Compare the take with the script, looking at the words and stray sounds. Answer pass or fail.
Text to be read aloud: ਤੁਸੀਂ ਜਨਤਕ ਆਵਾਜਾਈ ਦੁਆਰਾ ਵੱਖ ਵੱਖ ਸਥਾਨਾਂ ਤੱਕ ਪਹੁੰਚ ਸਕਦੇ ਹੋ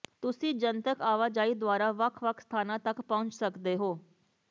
pass